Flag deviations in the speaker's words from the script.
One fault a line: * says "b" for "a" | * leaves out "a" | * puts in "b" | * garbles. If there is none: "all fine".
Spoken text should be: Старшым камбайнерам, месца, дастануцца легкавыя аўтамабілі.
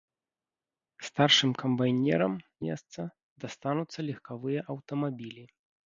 all fine